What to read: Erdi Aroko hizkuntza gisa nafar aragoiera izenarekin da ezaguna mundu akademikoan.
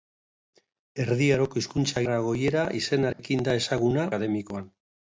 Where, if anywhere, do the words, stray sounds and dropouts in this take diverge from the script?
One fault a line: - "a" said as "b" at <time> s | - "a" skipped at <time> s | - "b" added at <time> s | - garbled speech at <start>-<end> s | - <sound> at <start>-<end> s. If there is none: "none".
- "gisa nafar" skipped at 2.0 s
- dropout at 3.1-3.2 s
- "mundu" skipped at 4.1 s